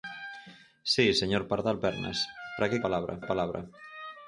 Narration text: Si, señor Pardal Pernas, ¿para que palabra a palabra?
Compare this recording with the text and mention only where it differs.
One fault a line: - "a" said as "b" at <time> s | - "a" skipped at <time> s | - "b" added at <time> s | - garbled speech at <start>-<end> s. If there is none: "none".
none